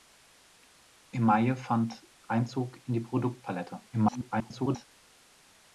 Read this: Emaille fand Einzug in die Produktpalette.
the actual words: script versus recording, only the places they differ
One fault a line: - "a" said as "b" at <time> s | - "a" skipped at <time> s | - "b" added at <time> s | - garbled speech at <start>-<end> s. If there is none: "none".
- garbled speech at 3.9-4.9 s